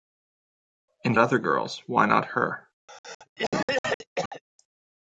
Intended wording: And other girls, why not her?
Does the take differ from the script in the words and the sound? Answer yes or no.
yes